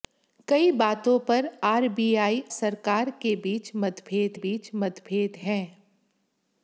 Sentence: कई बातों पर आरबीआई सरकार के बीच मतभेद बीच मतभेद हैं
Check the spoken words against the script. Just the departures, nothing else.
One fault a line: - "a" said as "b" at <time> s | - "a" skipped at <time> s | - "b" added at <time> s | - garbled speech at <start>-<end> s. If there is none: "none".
none